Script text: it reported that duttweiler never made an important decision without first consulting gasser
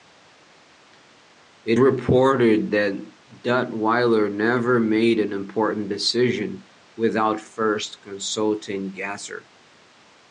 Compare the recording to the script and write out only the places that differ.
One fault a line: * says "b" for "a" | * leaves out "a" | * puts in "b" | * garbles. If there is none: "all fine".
all fine